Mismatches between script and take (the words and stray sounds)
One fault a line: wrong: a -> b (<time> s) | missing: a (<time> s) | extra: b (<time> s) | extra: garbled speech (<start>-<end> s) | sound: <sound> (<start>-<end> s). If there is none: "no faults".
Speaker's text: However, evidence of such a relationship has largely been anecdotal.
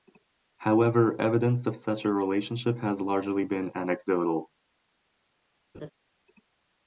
sound: laugh (5.7-5.9 s)